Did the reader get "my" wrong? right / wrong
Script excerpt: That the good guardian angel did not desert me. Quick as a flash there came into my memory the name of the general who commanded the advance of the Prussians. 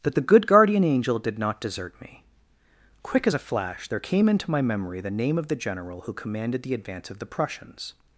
right